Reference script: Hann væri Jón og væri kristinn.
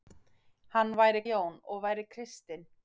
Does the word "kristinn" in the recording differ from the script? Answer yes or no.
no